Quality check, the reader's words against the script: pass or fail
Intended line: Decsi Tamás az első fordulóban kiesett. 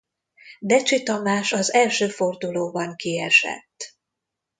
pass